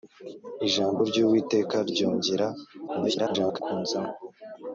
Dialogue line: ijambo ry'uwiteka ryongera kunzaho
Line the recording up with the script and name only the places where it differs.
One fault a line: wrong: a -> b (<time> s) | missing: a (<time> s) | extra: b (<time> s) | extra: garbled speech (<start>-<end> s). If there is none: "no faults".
extra: garbled speech (2.9-3.6 s)